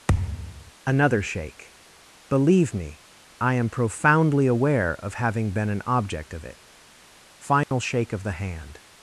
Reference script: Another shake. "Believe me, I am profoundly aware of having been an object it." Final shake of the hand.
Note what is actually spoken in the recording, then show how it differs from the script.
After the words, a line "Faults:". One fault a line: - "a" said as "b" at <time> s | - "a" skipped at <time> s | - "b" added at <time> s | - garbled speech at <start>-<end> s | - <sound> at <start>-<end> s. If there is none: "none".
Another shake. "Believe me, I am profoundly aware of having been an object of it." Final shake of the hand.
Faults:
- thud at 0.1-0.7 s
- "of" added at 6.3 s
- dropout at 7.6-7.7 s